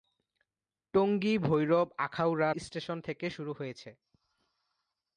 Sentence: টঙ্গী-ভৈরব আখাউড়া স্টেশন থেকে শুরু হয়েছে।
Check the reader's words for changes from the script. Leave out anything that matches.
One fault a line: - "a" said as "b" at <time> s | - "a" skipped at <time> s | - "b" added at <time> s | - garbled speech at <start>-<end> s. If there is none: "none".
none